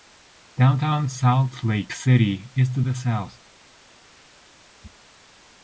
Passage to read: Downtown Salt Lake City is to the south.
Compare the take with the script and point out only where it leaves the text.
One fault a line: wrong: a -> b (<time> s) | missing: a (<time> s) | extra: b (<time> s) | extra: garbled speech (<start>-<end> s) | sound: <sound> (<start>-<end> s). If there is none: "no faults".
no faults